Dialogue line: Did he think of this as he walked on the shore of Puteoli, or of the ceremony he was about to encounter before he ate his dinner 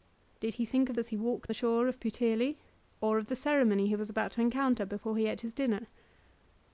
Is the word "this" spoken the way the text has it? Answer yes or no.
no